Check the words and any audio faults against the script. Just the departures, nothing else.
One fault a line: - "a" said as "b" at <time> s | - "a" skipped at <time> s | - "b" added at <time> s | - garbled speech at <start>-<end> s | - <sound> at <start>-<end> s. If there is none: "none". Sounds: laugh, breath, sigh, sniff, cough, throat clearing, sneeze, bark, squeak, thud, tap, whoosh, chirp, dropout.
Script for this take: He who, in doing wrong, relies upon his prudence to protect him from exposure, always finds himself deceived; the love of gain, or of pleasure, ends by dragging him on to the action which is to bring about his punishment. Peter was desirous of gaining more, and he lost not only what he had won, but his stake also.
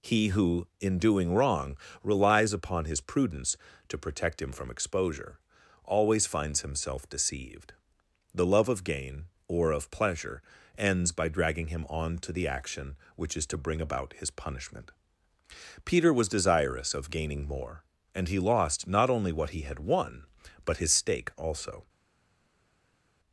none